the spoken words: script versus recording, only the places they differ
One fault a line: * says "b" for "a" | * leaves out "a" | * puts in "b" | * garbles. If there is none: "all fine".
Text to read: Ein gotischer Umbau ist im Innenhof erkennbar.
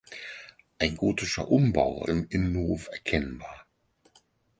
* leaves out "ist"